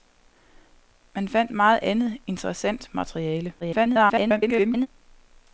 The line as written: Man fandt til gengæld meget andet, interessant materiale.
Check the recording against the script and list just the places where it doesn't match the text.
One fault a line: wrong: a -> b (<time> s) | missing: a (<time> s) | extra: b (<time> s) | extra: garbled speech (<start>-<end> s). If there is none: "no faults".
missing: til gengæld (1.5 s)
extra: garbled speech (3.6-4.9 s)